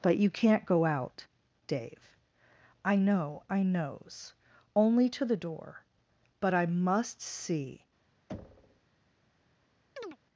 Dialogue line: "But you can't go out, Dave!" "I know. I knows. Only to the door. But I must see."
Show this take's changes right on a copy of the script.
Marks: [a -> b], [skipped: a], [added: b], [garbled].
"But you can't go out, Dave!" "I know. I knows. Only to the door. But I must see."